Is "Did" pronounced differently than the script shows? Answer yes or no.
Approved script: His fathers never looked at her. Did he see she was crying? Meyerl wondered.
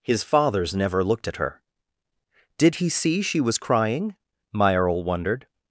no